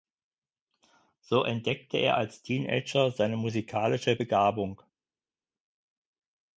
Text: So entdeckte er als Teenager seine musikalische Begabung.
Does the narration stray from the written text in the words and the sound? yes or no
no